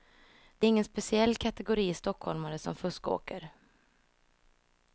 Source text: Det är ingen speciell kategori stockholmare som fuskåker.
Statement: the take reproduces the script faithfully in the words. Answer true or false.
true